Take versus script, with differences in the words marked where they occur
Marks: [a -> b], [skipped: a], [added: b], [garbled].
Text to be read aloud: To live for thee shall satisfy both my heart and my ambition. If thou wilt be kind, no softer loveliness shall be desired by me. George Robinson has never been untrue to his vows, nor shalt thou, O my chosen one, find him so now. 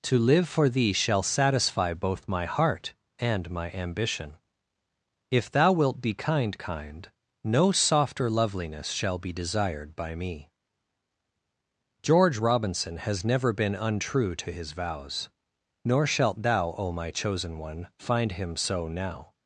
To live for thee shall satisfy both my heart and my ambition. If thou wilt be kind, [added: kind] no softer loveliness shall be desired by me. George Robinson has never been untrue to his vows, nor shalt thou, O my chosen one, find him so now.